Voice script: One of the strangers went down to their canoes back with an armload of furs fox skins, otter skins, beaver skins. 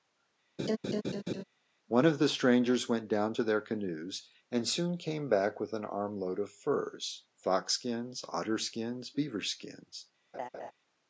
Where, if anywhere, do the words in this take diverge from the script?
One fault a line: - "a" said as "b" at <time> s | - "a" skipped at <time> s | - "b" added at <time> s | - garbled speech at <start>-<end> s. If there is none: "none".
- "and soon came" added at 4.5 s